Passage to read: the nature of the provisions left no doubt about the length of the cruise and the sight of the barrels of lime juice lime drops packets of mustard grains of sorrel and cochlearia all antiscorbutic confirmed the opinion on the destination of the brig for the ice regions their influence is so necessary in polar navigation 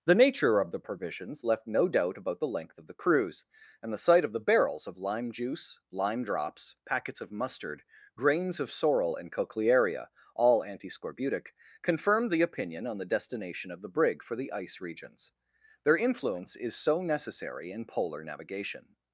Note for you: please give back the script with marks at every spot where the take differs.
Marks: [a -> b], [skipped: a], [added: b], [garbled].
the nature of the provisions left no doubt about the length of the cruise and the sight of the barrels of lime juice lime drops packets of mustard grains of sorrel and cochlearia all antiscorbutic confirmed the opinion on the destination of the brig for the ice regions their influence is so necessary in polar navigation